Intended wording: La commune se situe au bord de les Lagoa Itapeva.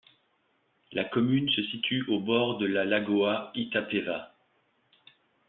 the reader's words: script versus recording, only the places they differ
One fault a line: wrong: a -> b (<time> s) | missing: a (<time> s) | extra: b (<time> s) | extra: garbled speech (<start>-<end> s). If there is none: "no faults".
wrong: les -> la (2.6 s)